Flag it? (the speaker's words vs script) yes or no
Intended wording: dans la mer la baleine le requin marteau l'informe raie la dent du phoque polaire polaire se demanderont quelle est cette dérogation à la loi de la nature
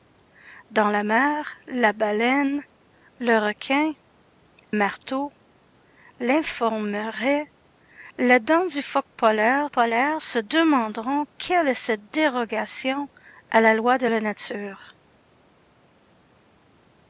no